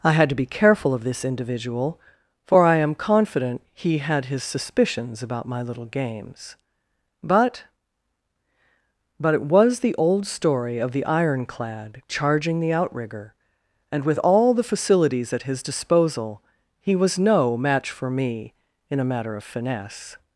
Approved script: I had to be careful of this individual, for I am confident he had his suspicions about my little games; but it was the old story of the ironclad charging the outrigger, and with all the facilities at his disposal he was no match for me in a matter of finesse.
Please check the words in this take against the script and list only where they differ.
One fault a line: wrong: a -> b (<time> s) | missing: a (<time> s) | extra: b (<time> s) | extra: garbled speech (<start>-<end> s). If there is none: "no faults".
extra: but (9.2 s)